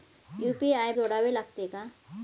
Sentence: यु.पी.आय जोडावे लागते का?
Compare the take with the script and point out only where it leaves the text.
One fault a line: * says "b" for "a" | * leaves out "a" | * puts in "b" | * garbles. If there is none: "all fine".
all fine